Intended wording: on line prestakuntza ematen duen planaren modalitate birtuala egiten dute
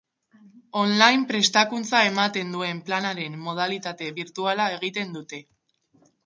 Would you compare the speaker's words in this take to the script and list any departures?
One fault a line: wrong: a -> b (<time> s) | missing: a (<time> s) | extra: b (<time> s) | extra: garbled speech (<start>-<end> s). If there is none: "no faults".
no faults